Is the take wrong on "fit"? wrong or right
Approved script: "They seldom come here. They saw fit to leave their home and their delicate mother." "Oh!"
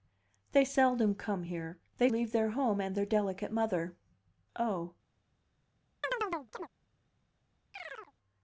wrong